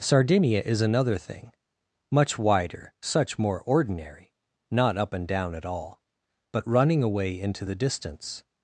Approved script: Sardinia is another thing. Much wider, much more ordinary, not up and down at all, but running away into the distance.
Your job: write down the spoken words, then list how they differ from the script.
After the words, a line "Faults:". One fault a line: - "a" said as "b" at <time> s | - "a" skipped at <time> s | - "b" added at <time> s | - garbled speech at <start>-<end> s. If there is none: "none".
Sardinia is another thing. Much wider, such more ordinary, not up and down at all, but running away into the distance.
Faults:
- "much" said as "such" at 3.0 s